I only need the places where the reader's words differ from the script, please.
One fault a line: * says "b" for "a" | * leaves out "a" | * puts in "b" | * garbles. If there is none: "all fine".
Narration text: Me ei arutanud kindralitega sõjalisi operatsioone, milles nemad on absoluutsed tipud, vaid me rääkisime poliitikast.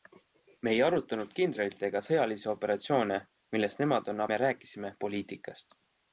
* leaves out "absoluutsed tipud vaid"